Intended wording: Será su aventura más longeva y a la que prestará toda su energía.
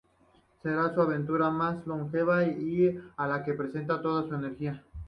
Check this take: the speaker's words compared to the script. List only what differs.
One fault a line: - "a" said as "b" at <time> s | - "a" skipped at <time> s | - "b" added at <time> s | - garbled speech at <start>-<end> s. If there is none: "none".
none